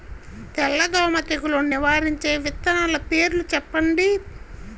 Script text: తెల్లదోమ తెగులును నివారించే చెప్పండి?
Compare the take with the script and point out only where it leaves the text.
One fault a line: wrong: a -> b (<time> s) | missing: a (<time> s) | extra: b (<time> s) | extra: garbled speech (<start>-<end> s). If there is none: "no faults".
extra: విత్తనాల పేర్లు (2.4 s)